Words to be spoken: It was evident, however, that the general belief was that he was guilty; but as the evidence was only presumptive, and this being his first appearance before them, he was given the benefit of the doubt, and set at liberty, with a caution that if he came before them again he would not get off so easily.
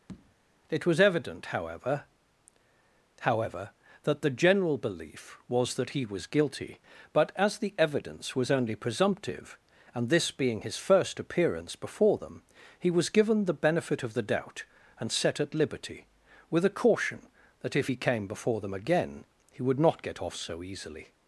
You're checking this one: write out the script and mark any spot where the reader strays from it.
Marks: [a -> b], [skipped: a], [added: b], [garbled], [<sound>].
[tap] It was evident, however, [added: however] that the general belief was that he was guilty; but as the evidence was only presumptive, and this being his first appearance before them, he was given the benefit of the doubt, and set at liberty, with a caution that if he came before them again he would not get off so easily.